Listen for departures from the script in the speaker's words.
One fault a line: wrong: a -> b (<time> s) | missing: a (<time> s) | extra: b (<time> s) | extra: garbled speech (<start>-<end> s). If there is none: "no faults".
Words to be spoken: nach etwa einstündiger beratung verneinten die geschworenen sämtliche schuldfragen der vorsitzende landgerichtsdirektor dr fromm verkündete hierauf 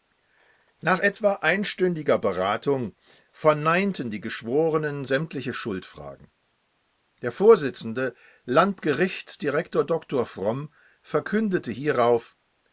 no faults